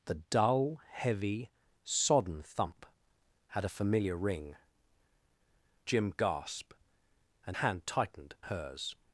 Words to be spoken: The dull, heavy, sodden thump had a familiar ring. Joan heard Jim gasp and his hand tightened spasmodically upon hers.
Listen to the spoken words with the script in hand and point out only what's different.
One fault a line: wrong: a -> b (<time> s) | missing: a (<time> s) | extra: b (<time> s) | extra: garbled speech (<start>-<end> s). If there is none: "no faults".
missing: Joan heard (4.5 s)
missing: his (7.6 s)
missing: spasmodically upon (8.3 s)